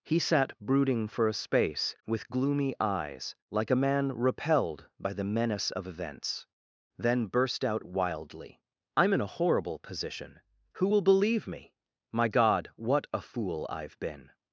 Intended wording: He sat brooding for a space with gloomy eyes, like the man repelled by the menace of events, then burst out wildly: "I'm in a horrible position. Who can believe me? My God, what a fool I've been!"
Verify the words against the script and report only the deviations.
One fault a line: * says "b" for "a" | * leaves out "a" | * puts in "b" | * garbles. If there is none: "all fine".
* says "a" for "the"
* says "will" for "can"